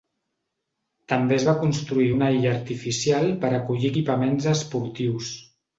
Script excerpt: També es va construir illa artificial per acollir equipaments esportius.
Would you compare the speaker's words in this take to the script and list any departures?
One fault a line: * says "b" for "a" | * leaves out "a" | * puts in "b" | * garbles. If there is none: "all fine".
* puts in "una"